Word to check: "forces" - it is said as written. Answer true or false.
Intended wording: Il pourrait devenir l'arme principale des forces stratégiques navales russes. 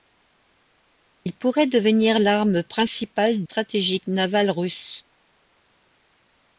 false